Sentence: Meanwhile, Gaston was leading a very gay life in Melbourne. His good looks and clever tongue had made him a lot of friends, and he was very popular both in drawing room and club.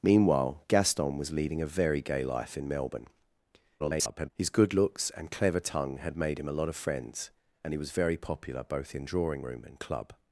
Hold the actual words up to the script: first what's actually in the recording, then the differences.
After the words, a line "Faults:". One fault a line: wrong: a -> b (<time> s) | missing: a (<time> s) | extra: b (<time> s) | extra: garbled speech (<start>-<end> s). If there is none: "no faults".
Meanwhile, Gaston was leading a very gay life in Melbourne. [garbled] His good looks and clever tongue had made him a lot of friends, and he was very popular both in drawing room and club.
Faults:
extra: garbled speech (3.8-4.3 s)